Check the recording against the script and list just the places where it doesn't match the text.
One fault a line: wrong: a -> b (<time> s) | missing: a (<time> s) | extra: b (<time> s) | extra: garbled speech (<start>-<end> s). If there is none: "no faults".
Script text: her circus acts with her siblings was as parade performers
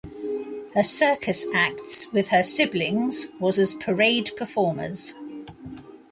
no faults